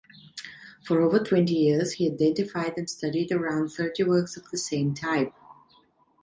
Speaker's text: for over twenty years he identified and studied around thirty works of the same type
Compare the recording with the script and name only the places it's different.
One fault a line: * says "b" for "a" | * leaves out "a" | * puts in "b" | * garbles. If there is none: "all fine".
all fine